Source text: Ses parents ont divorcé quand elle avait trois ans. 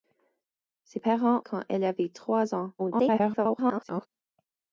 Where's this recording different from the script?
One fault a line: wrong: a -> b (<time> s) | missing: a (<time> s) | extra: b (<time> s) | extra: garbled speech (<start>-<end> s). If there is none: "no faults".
missing: ont divorcé (1.4 s)
extra: garbled speech (2.8-4.1 s)